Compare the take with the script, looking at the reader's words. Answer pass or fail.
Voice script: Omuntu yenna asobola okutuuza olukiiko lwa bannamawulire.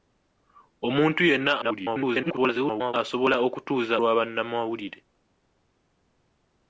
fail